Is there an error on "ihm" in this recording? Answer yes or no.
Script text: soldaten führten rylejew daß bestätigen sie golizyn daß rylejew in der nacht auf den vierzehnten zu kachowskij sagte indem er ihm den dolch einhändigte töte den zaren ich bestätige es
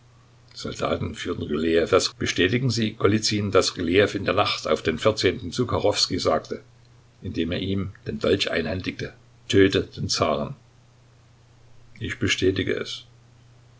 no